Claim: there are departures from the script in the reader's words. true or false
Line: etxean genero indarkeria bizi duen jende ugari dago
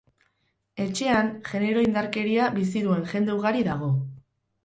false